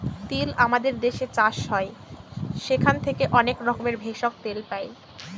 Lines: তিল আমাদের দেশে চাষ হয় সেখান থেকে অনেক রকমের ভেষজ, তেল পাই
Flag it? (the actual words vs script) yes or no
no